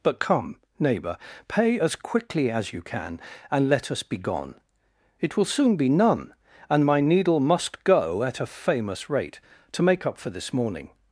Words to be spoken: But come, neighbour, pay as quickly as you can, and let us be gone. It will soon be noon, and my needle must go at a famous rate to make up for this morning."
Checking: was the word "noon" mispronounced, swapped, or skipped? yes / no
yes